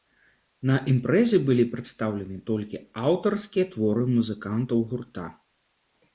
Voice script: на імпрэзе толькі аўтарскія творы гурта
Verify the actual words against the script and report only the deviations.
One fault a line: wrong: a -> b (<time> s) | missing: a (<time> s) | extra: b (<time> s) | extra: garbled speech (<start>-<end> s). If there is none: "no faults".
extra: былі прадстаўлены (1.5 s)
extra: музыкантаў (4.2 s)